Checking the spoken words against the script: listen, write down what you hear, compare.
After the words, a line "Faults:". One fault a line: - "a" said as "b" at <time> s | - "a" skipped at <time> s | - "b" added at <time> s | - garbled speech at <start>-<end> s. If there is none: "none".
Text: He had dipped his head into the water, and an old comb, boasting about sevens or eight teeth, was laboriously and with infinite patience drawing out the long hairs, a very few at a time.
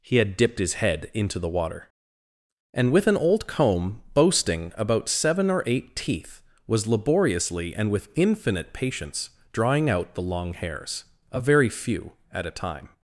He had dipped his head into the water, and with an old comb, boasting about seven or eight teeth, was laboriously and with infinite patience drawing out the long hairs, a very few at a time.
Faults:
- "with" added at 2.9 s
- "sevens" said as "seven" at 5.1 s